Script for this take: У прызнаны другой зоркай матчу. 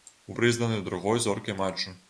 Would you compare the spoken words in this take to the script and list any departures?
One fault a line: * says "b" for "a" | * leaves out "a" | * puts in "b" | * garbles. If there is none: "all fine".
all fine